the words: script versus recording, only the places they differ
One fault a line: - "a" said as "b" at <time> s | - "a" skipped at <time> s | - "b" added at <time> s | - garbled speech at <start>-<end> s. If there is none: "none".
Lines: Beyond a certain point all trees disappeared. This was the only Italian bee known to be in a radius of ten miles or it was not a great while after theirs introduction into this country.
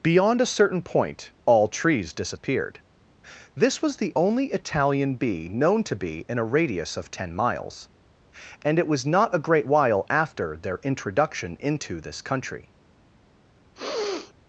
- "or" said as "and" at 8.6 s
- "theirs" said as "their" at 10.6 s